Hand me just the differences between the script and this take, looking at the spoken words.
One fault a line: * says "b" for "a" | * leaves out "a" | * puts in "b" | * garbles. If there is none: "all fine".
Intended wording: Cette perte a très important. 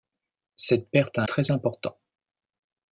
all fine